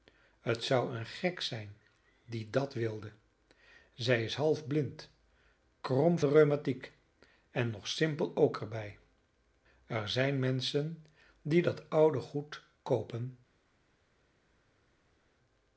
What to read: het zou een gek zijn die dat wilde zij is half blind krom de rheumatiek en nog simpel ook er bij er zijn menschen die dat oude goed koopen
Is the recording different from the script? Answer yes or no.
no